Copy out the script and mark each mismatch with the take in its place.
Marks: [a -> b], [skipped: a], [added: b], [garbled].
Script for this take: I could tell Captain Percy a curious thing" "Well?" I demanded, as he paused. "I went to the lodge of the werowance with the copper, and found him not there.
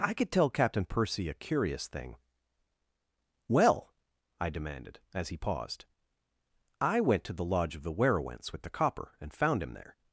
I could tell Captain Percy a curious thing" "Well?" I demanded, as he paused. "I went to the lodge of the werowance with the copper, and found him [skipped: not] there.